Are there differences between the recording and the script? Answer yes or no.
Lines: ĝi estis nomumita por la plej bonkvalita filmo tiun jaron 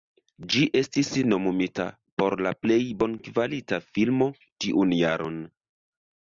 no